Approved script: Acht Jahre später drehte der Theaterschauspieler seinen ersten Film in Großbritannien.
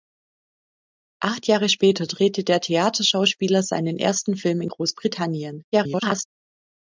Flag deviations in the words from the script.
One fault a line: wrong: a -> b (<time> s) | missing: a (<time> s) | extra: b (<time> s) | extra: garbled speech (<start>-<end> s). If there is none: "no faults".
extra: garbled speech (5.7-6.3 s)